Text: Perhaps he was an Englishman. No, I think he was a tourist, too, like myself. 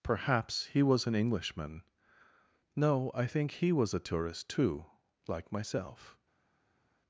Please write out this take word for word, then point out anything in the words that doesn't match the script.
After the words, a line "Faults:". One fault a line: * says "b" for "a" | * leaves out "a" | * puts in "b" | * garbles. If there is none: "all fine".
Perhaps he was an Englishman. No, I think he was a tourist, too, like myself.
Faults:
all fine